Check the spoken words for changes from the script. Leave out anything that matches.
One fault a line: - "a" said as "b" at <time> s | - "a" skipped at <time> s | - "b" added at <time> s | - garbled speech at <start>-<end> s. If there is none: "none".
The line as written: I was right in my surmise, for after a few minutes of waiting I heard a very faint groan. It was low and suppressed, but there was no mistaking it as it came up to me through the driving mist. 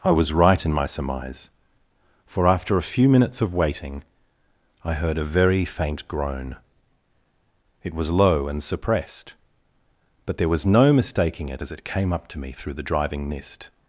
none